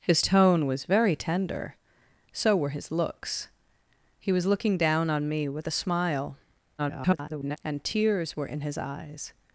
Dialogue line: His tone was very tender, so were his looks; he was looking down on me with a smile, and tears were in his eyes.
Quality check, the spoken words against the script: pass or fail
fail